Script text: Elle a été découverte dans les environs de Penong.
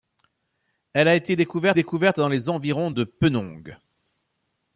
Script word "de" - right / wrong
right